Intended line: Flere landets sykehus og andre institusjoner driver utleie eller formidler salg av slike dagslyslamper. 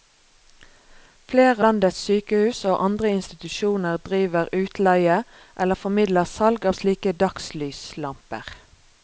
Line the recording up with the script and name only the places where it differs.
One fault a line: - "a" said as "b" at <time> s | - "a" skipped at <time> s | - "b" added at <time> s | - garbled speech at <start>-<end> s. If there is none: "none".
none